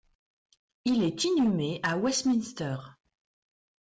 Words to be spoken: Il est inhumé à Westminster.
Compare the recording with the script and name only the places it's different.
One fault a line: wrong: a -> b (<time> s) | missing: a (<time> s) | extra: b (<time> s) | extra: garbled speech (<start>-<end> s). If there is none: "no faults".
no faults